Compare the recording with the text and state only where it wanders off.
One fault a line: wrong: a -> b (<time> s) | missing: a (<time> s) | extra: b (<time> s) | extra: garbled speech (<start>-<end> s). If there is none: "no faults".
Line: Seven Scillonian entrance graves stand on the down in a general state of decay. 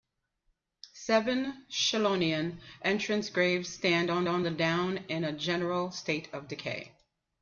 extra: on (4.3 s)